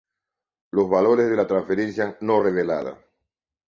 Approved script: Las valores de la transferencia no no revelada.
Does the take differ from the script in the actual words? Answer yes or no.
yes